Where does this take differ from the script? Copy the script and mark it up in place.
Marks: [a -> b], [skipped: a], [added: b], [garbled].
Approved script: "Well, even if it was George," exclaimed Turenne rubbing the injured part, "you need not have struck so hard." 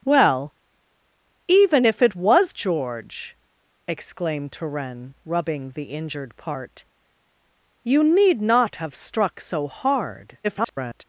"Well, even if it was George," exclaimed Turenne rubbing the injured part, "you need not have struck so hard." [garbled]